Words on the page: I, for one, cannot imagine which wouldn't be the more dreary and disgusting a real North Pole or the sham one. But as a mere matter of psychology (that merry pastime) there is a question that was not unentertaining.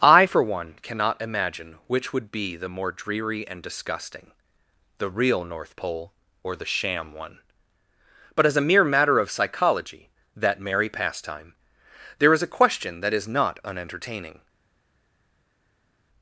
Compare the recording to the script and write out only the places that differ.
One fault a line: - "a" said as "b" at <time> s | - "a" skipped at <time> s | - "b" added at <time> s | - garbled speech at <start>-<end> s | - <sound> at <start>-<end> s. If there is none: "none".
- "wouldn't" said as "would" at 2.1 s
- "a" said as "the" at 5.0 s
- "was" said as "is" at 13.1 s